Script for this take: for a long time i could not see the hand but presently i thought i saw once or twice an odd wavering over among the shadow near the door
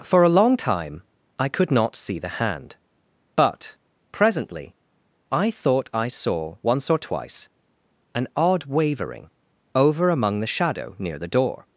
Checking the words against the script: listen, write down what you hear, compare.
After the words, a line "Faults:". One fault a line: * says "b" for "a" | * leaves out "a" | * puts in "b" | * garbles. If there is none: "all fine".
for a long time i could not see the hand but presently i thought i saw once or twice an odd wavering over among the shadow near the door
Faults:
all fine